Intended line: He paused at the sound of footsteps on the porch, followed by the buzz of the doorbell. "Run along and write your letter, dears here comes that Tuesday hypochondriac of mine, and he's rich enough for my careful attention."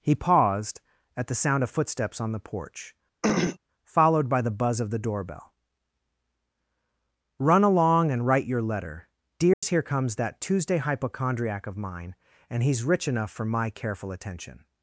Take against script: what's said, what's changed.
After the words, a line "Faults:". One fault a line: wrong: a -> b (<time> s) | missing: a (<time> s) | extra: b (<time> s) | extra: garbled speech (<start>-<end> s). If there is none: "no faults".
He paused at the sound of footsteps on the porch, followed by the buzz of the doorbell. "Run along and write your letter, dears here comes that Tuesday hypochondriac of mine, and he's rich enough for my careful attention."
Faults:
no faults